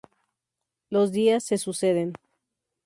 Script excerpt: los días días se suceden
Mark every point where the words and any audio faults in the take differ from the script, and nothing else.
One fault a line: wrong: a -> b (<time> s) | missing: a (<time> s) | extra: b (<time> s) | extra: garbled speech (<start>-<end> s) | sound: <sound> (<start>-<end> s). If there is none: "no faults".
missing: días (1.4 s)